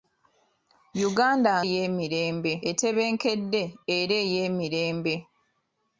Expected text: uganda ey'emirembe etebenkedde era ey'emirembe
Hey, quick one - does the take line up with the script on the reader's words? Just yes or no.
yes